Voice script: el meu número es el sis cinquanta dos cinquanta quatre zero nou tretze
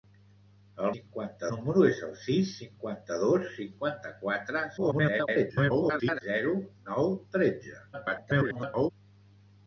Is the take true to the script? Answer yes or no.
no